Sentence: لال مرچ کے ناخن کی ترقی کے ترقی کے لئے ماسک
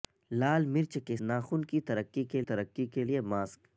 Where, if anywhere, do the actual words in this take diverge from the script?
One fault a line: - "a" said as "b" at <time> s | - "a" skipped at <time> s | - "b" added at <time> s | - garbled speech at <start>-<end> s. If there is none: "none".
none